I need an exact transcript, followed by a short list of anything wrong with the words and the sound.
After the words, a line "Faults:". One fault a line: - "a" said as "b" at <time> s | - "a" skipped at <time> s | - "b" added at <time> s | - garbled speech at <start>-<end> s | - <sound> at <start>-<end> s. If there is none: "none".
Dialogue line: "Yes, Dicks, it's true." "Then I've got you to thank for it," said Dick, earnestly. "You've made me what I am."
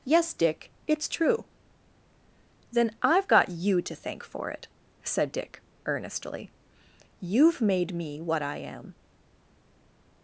"Yes, Dick, it's true." "Then I've got you to thank for it," said Dick, earnestly. "You've made me what I am."
Faults:
- "Dicks" said as "Dick" at 0.3 s